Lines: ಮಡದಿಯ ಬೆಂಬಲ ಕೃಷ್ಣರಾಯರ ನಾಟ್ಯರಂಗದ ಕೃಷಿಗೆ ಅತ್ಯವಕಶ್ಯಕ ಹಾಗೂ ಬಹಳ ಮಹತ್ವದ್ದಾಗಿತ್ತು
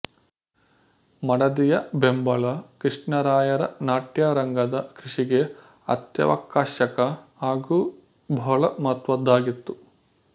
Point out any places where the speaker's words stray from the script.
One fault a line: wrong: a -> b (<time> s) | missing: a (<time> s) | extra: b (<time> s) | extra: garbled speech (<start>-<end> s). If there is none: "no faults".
no faults